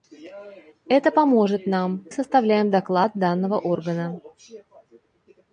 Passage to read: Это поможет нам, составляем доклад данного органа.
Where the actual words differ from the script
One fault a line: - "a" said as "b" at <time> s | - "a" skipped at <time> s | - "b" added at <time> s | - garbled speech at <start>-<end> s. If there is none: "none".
none